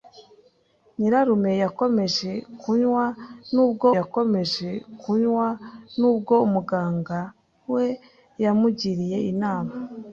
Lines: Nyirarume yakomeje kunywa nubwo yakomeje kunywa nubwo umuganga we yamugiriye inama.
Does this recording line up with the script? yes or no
yes